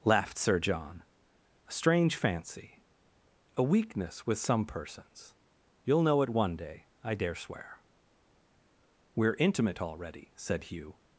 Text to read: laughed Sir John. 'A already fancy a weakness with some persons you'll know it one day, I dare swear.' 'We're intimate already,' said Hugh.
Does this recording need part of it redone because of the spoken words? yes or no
yes